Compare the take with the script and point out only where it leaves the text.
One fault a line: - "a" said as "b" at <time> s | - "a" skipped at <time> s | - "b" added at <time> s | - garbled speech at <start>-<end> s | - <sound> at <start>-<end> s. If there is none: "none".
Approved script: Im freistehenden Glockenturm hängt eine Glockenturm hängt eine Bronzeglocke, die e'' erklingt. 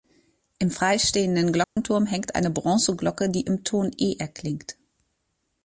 - dropout at 1.6-1.8 s
- "Glockenturm hängt eine Bronzeglocke die" said as "Bronzeglocke die im Ton" at 2.5 s